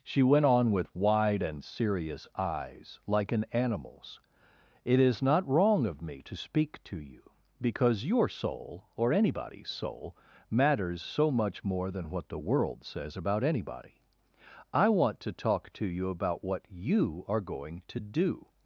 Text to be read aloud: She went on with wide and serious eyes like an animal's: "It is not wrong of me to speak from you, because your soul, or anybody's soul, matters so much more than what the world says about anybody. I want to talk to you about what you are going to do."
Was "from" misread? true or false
true